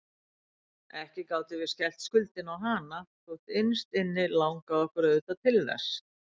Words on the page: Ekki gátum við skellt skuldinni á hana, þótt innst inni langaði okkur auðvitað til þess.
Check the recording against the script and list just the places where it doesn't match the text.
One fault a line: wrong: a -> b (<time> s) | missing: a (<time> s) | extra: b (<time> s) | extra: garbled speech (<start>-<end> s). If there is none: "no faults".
no faults